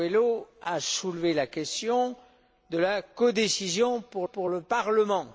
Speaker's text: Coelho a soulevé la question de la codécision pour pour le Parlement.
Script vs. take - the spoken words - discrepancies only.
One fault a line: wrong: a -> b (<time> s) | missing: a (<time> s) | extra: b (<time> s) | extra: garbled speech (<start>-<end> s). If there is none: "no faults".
no faults